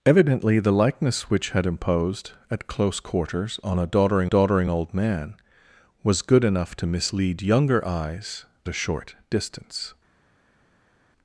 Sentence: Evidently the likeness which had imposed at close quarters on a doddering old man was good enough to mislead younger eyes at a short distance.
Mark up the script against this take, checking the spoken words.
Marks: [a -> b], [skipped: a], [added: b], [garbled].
Evidently the likeness which had imposed at close quarters on a doddering [added: doddering] old man was good enough to mislead younger eyes [skipped: at] a short distance.